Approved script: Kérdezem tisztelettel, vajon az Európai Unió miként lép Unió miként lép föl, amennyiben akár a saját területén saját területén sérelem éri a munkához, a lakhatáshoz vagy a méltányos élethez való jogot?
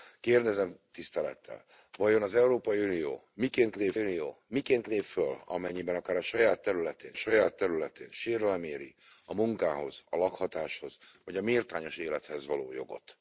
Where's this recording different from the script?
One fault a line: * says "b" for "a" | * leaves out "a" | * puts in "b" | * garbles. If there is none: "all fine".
all fine